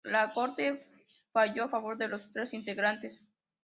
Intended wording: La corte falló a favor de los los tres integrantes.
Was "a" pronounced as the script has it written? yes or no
yes